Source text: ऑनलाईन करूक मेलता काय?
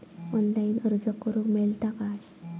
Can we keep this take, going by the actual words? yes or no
no